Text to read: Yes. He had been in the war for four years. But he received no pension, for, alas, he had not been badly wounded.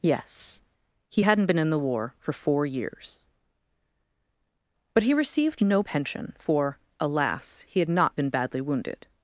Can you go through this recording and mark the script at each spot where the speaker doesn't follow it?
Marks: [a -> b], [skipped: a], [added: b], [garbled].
Yes. He [had -> hadn't] been in the war for four years. But he received no pension, for, alas, he had not been badly wounded.